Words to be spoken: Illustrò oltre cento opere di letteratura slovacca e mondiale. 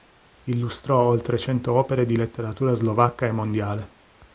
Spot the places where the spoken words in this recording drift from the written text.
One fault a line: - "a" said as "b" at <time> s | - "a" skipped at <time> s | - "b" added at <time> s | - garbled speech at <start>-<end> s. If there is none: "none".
none